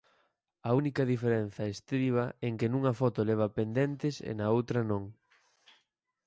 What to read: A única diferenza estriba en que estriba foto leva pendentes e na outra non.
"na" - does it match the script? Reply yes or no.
yes